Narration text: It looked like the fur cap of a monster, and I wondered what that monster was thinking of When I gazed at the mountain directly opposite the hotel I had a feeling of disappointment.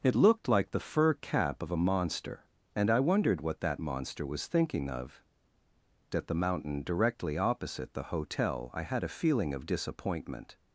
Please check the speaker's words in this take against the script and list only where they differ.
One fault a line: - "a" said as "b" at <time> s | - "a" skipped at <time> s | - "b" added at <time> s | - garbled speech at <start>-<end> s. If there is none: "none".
- "When I gazed" skipped at 5.2 s